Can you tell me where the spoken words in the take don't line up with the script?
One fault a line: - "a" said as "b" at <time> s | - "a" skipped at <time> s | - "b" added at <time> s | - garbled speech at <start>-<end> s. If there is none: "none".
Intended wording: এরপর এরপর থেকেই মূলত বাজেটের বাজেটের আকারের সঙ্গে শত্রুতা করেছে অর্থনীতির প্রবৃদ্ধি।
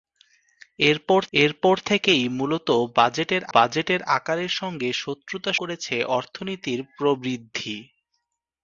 none